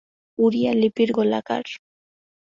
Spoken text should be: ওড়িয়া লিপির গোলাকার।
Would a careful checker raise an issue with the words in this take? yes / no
no